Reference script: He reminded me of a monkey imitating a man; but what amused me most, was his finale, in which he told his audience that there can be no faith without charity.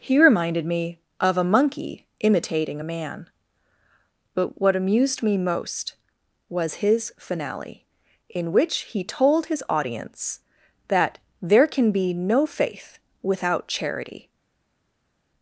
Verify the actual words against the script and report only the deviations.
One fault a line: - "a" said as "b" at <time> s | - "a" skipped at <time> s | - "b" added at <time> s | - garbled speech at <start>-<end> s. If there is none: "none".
none